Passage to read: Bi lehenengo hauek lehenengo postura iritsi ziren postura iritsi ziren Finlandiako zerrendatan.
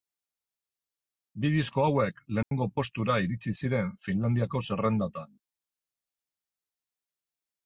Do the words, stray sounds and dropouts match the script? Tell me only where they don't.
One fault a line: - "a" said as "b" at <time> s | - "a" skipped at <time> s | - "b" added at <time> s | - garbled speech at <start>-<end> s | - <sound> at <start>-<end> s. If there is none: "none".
- "lehenengo" said as "disko" at 1.6 s
- dropout at 2.4-2.5 s
- "postura iritsi ziren" skipped at 3.9 s